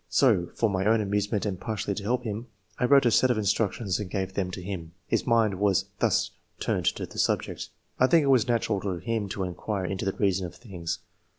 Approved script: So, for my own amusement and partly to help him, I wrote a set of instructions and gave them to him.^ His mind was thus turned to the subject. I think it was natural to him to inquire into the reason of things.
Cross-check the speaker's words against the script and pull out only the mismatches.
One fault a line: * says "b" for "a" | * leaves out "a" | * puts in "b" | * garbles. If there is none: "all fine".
all fine